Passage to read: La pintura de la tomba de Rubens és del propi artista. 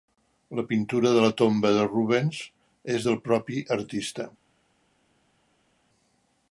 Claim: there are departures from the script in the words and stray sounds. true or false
false